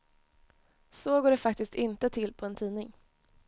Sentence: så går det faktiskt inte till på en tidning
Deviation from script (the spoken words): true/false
false